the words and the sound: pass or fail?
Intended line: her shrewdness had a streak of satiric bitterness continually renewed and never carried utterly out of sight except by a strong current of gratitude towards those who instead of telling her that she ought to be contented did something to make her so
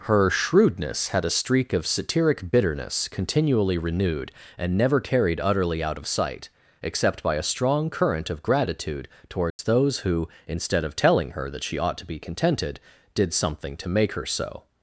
fail